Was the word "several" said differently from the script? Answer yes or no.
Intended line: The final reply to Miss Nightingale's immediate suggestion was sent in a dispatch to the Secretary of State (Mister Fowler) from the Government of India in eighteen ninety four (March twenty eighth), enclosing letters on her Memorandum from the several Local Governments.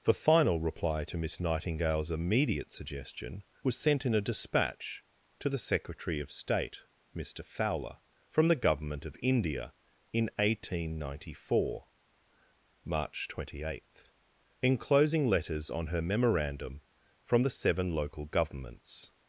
yes